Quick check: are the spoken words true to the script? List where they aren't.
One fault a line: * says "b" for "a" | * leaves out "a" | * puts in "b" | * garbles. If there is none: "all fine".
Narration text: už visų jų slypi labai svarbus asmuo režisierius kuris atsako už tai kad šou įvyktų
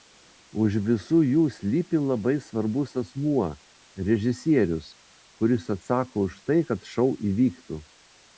all fine